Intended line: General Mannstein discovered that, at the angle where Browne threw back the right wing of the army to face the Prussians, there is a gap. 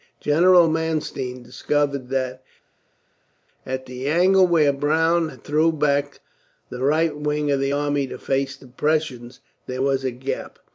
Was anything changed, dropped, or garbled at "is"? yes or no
yes